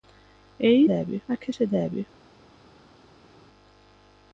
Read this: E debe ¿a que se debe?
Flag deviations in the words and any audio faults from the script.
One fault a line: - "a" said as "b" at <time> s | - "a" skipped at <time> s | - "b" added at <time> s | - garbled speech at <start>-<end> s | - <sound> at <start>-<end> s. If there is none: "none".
none